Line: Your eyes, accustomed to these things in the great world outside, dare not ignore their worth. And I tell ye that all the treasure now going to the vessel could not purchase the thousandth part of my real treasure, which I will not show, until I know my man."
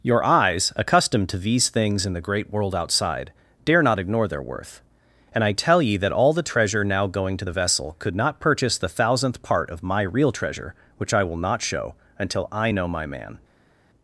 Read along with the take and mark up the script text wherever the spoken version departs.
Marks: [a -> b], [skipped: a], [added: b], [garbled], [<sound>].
Your eyes, accustomed to these things in the great world outside, dare not ignore their worth. And I tell ye that all the treasure now going to the vessel could not purchase the thousandth part of my real treasure, which I will not show, until I know my man."